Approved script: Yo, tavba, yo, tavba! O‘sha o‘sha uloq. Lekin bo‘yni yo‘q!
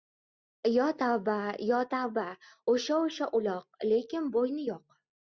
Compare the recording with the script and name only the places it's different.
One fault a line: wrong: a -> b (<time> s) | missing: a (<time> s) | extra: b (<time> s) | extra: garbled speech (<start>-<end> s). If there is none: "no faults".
no faults